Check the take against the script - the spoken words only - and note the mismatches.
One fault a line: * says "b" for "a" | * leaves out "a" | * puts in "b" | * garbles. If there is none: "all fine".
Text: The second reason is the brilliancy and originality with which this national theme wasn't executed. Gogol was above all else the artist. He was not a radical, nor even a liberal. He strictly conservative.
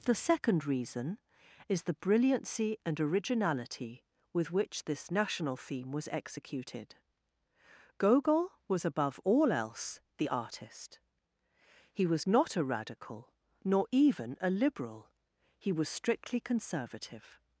* says "was" for "wasn't"
* puts in "was"